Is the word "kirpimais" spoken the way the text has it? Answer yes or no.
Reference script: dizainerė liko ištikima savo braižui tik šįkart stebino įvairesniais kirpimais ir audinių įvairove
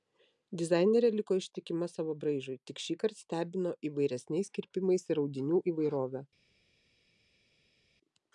yes